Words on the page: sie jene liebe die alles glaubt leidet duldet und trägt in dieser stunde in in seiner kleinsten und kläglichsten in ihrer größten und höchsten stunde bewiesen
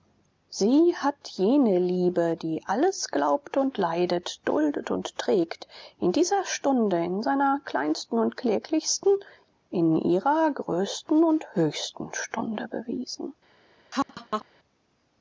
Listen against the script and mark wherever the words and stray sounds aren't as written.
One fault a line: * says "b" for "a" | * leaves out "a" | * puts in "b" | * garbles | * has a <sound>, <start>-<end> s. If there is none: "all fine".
* puts in "hat"
* puts in "und"
* leaves out "in"
* has a laugh, 13.9-14.5 s